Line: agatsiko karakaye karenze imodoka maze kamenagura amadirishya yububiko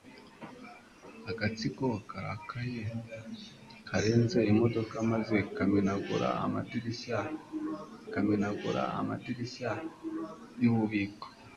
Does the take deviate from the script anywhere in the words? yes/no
yes